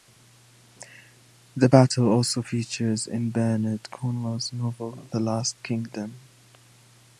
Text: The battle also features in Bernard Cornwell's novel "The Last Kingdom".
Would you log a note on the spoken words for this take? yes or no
no